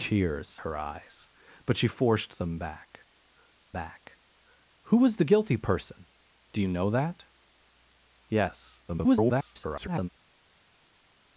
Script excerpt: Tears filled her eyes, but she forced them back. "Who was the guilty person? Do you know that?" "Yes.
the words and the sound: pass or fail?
fail